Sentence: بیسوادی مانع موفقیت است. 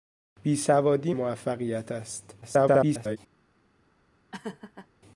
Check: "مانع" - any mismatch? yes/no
yes